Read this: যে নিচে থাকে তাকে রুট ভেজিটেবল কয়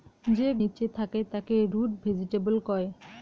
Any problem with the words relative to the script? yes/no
no